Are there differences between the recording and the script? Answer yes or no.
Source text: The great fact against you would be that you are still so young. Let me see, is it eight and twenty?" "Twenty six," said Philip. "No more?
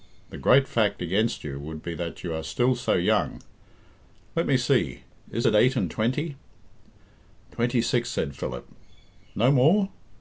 no